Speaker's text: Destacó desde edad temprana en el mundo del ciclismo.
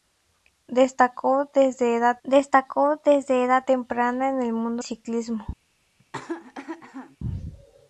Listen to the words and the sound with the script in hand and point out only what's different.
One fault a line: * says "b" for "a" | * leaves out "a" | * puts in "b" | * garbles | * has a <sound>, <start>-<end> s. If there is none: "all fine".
* puts in "destacó desde edad"
* leaves out "del"
* has a cough, 6.0-7.2 s